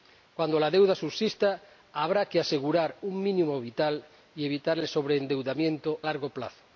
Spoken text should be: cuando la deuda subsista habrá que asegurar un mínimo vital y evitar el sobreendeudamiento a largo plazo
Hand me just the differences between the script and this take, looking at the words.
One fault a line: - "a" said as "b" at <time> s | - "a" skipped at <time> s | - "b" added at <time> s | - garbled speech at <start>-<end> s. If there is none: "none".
- "a" skipped at 6.0 s